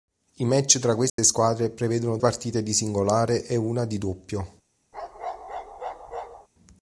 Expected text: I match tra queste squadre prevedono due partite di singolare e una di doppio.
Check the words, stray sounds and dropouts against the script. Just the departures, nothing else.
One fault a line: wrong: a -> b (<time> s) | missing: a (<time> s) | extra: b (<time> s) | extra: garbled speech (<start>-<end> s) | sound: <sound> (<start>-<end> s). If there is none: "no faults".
sound: dropout (1.1-1.2 s)
missing: due (2.2 s)
sound: bark (4.9-6.5 s)